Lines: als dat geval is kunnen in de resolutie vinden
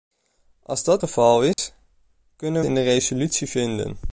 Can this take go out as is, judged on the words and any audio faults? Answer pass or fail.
fail